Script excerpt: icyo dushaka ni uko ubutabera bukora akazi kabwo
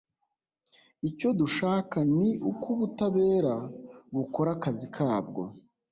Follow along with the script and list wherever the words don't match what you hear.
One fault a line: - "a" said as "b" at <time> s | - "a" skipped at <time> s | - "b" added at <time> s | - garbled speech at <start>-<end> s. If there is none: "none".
none